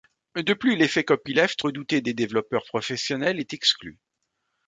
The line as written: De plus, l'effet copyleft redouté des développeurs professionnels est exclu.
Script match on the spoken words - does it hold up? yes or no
yes